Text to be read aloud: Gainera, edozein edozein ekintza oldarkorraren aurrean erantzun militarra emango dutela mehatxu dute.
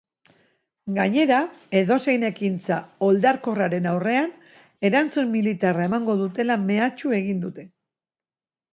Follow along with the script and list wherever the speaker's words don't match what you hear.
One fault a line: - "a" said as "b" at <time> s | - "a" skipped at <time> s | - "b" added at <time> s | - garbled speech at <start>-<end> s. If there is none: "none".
- "edozein" skipped at 2.2 s
- "egin" added at 7.2 s